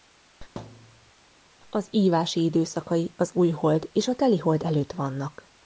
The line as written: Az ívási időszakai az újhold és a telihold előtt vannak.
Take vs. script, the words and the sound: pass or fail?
fail